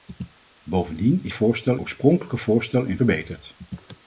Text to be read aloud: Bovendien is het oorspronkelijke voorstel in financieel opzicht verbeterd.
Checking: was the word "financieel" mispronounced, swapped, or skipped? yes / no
yes